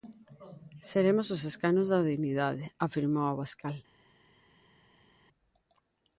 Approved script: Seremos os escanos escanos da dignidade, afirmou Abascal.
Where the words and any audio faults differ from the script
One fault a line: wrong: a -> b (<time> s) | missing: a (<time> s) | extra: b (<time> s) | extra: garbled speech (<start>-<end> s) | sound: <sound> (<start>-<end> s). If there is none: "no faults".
missing: escanos (1.9 s)